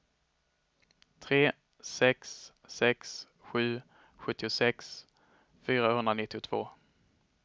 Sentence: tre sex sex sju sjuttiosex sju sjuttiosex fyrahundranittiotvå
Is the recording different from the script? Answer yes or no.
yes